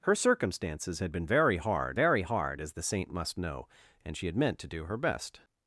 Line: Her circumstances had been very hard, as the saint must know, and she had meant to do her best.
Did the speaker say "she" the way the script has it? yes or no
yes